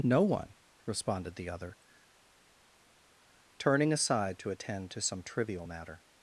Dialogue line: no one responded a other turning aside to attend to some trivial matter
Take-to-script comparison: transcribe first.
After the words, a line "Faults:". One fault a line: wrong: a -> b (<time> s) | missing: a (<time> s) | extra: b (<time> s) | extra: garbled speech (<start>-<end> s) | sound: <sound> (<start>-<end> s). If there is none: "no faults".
no one responded the other turning aside to attend to some trivial matter
Faults:
wrong: a -> the (1.4 s)